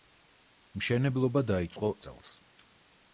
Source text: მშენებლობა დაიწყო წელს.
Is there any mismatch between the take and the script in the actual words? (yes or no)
no